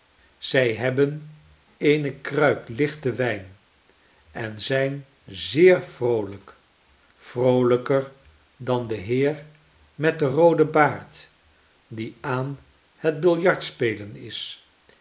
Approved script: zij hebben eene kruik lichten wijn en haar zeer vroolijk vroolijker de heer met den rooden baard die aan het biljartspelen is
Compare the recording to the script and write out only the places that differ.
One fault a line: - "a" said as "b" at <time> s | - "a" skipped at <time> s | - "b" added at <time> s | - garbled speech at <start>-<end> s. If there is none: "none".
- "haar" said as "zijn" at 4.6 s
- "dan" added at 8.6 s